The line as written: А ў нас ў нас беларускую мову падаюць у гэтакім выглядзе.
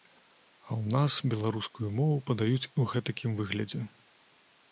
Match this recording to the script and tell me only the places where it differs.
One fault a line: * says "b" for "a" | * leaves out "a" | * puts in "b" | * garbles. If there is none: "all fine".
* leaves out "ў нас"